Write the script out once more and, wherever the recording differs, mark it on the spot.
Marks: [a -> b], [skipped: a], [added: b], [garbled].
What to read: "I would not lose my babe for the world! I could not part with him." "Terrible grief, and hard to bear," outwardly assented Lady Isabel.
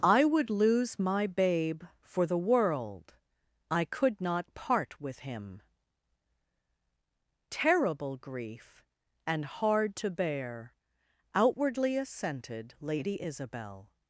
"I would [skipped: not] lose my babe for the world! I could not part with him." "Terrible grief, and hard to bear," outwardly assented Lady Isabel.